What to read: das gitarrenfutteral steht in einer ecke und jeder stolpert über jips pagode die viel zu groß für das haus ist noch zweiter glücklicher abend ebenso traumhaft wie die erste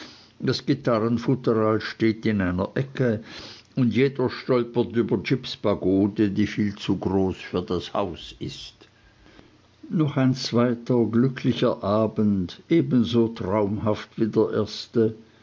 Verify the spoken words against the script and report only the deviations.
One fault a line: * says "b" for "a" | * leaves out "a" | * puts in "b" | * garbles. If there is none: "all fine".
* puts in "ein"
* says "der" for "die"